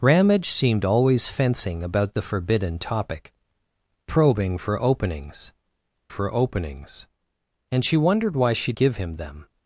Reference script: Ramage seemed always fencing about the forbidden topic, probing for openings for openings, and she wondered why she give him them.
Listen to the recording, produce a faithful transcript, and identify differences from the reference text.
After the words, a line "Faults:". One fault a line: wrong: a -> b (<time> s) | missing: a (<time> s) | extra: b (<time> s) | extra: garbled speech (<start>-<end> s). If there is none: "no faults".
Ramage seemed always fencing about the forbidden topic, probing for openings for openings, and she wondered why she give him them.
Faults:
no faults